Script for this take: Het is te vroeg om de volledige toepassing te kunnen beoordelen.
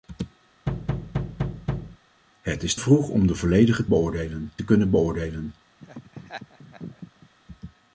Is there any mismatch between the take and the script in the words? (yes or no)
yes